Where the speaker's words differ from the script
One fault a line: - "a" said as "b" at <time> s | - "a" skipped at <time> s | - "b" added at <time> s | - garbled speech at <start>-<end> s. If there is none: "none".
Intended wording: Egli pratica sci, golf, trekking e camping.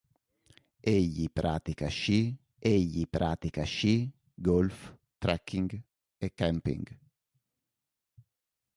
- "egli pratica sci" added at 2.6 s